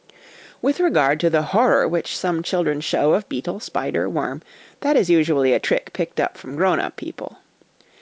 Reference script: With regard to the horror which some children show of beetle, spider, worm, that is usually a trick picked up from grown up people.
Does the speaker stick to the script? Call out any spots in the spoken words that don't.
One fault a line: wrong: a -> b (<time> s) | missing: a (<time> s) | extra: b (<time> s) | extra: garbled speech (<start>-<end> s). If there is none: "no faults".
no faults